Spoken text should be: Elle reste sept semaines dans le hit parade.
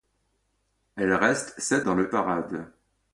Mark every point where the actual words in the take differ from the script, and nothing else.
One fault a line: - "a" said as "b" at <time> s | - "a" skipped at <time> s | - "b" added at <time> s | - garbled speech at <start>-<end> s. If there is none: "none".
- "semaines" skipped at 1.9 s
- "hit" skipped at 2.1 s